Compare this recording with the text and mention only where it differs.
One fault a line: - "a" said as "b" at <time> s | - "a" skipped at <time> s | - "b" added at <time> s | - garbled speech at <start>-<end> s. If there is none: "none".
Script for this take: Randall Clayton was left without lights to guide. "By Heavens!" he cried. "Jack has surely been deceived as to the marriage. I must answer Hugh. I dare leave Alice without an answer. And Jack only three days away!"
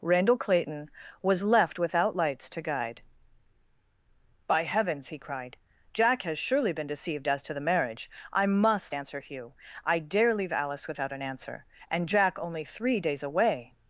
none